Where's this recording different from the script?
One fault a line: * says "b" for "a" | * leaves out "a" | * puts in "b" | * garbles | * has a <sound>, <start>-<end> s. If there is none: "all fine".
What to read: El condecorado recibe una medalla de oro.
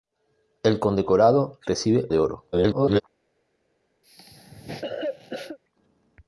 * leaves out "una medalla"
* garbles
* has a cough, 4.0-5.6 s